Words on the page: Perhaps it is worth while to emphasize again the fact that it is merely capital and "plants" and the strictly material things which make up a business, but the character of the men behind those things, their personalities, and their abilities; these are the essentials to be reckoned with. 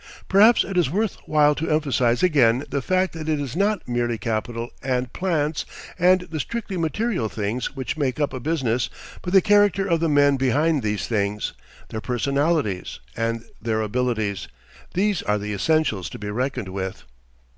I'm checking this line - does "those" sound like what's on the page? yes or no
no